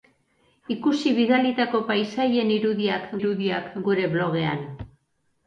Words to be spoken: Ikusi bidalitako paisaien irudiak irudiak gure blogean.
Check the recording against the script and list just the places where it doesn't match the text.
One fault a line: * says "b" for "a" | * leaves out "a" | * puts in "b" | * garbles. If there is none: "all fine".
all fine